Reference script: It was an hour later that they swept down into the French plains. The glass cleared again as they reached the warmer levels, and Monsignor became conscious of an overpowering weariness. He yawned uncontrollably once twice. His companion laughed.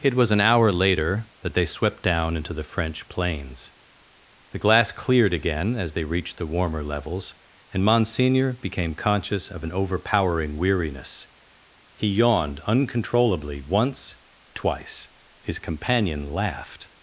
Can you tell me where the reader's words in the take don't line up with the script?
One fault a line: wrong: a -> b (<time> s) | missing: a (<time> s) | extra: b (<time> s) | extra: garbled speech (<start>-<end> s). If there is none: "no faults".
no faults